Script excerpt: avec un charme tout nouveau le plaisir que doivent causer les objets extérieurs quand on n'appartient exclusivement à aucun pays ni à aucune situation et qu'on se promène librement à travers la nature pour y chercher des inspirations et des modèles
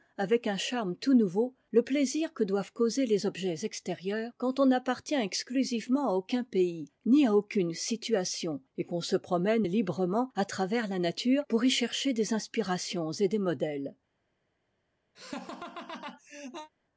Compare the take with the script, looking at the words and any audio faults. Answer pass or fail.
fail